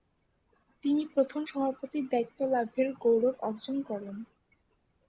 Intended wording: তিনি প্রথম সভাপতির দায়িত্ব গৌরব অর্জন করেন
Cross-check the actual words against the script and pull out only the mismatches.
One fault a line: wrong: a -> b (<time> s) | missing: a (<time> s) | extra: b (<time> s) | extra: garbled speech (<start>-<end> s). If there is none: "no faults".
extra: লাভের (2.5 s)